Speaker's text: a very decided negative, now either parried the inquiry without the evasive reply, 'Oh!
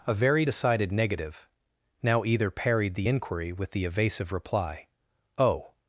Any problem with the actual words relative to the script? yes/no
yes